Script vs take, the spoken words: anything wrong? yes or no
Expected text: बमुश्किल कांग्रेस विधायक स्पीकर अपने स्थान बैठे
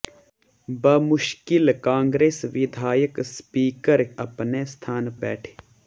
no